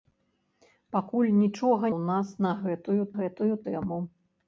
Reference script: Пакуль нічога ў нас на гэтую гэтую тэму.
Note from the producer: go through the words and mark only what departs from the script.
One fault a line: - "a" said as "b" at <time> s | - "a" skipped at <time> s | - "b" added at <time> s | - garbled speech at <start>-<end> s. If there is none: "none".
none